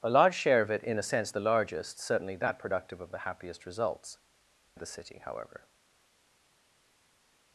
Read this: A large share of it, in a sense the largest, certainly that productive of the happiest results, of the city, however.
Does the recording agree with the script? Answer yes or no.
yes